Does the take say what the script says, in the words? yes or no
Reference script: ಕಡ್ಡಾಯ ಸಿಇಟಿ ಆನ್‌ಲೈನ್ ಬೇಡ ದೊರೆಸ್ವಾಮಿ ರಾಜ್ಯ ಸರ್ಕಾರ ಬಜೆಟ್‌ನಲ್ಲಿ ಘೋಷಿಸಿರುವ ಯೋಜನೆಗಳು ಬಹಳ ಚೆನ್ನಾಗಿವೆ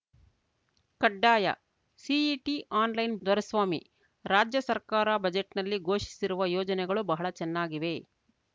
no